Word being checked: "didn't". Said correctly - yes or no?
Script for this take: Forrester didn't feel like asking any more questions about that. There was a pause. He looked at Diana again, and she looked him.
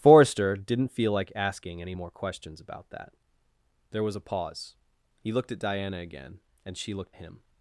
yes